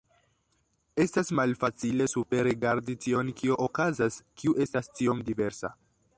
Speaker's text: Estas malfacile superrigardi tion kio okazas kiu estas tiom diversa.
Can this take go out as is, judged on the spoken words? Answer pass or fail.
pass